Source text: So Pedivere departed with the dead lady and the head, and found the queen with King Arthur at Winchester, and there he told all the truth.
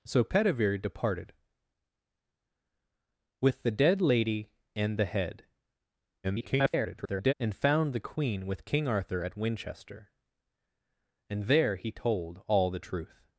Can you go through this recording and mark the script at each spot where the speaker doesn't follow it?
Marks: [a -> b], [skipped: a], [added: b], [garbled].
So Pedivere departed with the dead lady and the head, [garbled] and found the queen with King Arthur at Winchester, and there he told all the truth.